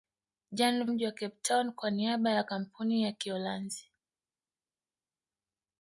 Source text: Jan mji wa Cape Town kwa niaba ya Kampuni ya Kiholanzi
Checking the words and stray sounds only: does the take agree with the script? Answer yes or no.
yes